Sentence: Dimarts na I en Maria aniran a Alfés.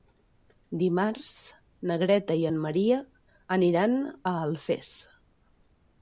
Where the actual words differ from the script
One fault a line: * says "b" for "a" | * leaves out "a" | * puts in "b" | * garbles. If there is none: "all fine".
* puts in "Greta"